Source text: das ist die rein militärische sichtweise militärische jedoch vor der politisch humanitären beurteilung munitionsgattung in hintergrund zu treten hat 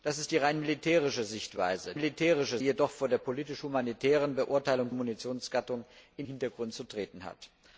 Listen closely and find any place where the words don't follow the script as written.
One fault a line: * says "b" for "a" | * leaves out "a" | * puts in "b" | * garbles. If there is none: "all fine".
all fine